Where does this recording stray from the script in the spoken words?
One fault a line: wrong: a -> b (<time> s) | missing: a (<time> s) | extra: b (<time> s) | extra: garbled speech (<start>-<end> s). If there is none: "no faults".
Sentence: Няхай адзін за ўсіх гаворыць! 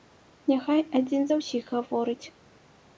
no faults